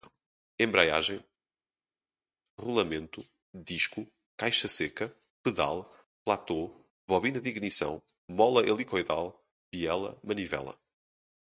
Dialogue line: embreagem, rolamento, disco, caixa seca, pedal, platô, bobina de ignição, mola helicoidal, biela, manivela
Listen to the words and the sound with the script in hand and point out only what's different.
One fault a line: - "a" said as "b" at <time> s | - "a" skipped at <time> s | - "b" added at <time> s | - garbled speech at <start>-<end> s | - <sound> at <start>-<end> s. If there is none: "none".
none